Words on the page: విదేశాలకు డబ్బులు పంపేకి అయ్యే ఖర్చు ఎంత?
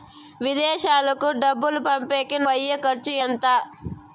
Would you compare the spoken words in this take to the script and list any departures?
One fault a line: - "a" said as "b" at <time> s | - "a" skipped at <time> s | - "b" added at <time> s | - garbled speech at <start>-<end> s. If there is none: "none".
none